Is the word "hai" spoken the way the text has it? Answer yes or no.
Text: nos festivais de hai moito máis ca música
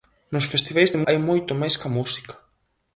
yes